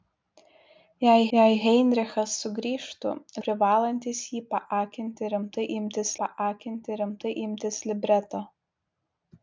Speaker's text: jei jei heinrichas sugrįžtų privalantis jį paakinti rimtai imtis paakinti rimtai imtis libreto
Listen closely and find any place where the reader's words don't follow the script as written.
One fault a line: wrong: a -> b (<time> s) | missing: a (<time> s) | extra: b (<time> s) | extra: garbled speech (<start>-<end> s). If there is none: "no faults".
no faults